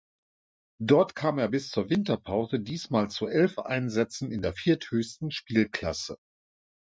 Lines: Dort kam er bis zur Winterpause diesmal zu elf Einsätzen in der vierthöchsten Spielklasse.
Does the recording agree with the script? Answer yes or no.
yes